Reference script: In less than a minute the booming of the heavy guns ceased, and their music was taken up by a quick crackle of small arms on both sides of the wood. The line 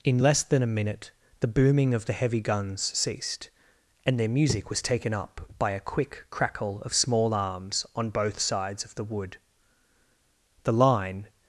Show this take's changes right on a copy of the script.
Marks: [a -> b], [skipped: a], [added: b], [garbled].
In less than a minute the booming of the heavy guns ceased, and their music was taken up by a quick crackle of small arms on both sides of the wood. The line